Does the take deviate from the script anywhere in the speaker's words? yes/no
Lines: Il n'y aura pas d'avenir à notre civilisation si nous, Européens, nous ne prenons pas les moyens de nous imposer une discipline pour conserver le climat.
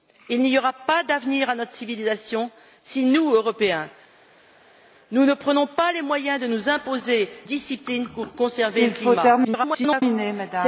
yes